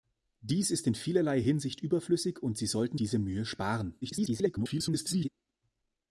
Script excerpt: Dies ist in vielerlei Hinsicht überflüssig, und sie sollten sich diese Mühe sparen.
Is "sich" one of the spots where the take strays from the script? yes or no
yes